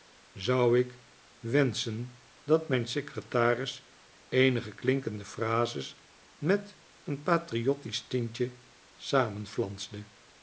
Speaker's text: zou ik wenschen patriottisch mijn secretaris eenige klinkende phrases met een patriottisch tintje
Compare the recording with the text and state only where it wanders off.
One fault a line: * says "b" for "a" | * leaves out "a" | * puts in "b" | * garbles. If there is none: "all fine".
* says "dat" for "patriottisch"